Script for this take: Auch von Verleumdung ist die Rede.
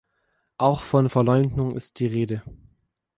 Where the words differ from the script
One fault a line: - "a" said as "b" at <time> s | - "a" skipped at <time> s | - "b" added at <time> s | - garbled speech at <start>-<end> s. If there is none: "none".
none